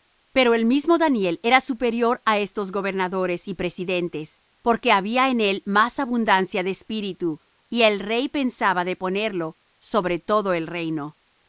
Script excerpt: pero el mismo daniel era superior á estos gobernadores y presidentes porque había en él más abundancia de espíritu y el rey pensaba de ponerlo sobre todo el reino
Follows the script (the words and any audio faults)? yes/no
yes